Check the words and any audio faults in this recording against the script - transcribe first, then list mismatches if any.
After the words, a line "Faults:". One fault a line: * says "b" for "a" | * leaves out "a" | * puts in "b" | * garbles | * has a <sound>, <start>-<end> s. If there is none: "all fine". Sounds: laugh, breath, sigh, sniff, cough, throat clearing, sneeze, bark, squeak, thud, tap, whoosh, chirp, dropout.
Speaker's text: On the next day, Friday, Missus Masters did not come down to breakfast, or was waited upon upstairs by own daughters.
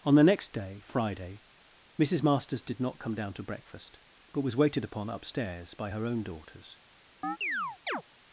On the next day, Friday, Missus Masters did not come down to breakfast, but was waited upon upstairs by her own daughters.
Faults:
* says "but" for "or"
* puts in "her"
* has a chirp, 7.2-8.0 s